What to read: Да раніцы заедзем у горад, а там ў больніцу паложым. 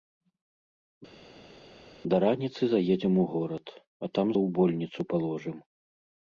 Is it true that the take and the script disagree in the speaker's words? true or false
false